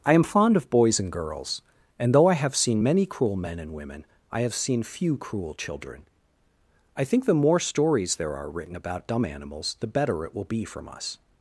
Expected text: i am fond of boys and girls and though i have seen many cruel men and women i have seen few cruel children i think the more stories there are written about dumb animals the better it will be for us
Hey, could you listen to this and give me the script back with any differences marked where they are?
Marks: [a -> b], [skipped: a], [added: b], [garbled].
i am fond of boys and girls and though i have seen many cruel men and women i have seen few cruel children i think the more stories there are written about dumb animals the better it will be [for -> from] us